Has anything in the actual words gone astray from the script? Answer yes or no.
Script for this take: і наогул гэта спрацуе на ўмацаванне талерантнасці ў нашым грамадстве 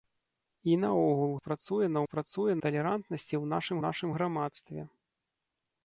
yes